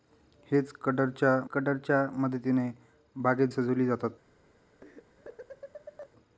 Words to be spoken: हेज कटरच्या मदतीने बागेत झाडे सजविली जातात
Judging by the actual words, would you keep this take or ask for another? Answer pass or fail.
fail